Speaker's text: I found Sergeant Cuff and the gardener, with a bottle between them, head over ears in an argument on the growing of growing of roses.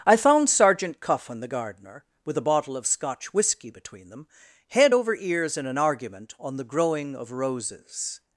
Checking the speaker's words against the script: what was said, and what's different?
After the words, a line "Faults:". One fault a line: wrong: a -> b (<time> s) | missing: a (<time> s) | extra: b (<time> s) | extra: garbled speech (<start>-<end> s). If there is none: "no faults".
I found Sergeant Cuff and the gardener, with a bottle of Scotch whisky between them, head over ears in an argument on the growing of roses.
Faults:
extra: of Scotch whisky (2.8 s)
missing: growing of (7.3 s)